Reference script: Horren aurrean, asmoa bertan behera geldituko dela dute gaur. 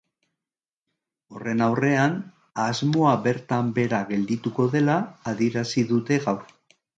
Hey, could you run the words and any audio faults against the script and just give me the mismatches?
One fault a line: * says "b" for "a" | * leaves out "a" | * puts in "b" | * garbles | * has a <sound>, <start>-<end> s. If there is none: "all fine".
* puts in "adierazi"